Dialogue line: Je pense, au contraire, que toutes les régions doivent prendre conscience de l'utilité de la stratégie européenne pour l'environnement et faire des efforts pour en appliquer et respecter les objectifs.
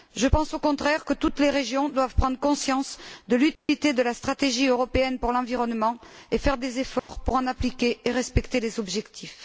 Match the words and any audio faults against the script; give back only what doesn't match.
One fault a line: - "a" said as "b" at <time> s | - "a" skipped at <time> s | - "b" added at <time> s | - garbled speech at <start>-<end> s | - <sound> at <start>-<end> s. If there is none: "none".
- dropout at 3.5-3.7 s
- dropout at 7.0-7.1 s